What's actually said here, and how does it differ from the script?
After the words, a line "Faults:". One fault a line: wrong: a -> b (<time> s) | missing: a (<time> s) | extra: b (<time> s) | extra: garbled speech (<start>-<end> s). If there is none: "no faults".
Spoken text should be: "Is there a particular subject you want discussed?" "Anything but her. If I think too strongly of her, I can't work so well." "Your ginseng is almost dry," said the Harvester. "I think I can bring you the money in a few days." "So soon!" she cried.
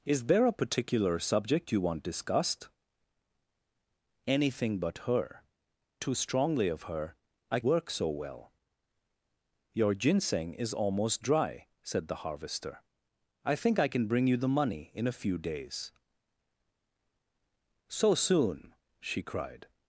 "Is there a particular subject you want discussed?" "Anything but her. Too strongly of her, I work so well." "Your ginseng is almost dry," said the Harvester. "I think I can bring you the money in a few days." "So soon!" she cried.
Faults:
missing: If I think (5.4 s)
missing: can't (7.6 s)